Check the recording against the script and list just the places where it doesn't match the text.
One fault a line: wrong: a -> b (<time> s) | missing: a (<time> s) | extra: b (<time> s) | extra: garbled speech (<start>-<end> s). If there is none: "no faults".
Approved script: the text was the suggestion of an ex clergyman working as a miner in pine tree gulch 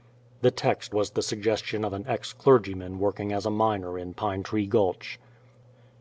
no faults